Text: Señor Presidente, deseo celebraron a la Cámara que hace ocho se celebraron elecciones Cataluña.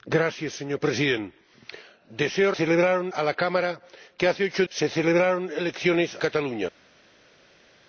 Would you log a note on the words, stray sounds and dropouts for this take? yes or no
no